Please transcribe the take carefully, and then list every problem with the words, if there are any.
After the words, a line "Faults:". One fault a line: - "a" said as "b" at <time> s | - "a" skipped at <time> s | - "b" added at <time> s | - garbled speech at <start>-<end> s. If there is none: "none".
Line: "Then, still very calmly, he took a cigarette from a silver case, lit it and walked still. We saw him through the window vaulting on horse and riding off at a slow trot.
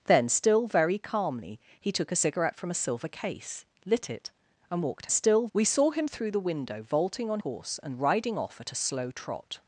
"Then, still very calmly, he took a cigarette from a silver case, lit it and walked still. We saw him through the window vaulting on horse and riding off at a slow trot.
Faults:
none